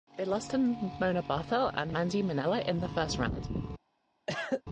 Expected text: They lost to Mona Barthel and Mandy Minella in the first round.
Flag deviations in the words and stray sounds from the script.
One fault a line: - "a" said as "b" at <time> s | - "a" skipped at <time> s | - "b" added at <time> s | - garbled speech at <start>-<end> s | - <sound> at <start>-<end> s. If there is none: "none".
- cough at 4.3-4.6 s